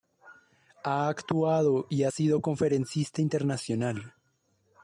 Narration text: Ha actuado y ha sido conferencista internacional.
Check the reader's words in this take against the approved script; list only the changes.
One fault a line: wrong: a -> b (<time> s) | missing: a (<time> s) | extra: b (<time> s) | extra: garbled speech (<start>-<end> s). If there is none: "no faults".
no faults